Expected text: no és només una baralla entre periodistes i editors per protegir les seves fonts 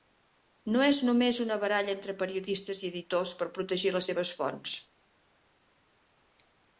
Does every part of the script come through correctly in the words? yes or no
yes